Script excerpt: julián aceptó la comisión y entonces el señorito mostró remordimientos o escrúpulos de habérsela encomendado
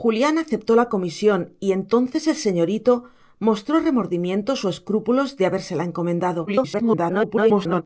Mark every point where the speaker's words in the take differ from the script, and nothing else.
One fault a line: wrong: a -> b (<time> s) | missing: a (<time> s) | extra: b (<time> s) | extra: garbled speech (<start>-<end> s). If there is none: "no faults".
extra: garbled speech (6.5-7.8 s)